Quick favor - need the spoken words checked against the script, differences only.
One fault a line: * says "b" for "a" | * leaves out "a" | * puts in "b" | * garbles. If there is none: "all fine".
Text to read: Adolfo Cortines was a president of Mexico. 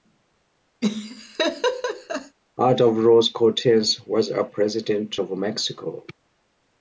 * puts in "Ruiz"